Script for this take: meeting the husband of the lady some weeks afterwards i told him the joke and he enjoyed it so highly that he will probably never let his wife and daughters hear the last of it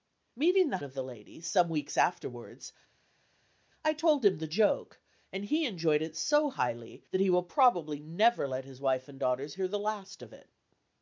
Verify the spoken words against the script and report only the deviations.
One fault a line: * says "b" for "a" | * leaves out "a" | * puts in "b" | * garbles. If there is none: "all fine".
* leaves out "husband"